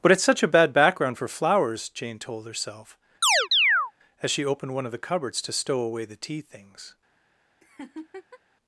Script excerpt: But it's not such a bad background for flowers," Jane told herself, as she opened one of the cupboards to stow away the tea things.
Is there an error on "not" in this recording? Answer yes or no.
yes